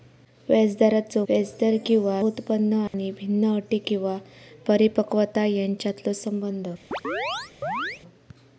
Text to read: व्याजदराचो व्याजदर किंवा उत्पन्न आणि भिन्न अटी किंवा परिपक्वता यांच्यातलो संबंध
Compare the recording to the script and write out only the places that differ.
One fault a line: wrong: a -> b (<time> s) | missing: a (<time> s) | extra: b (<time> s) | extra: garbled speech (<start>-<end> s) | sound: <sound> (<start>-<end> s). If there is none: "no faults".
sound: dropout (2.9-2.9 s)
sound: chirp (6.9-8.0 s)